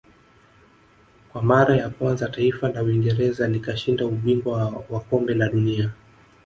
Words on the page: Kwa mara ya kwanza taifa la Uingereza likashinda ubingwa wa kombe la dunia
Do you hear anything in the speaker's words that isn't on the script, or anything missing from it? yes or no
no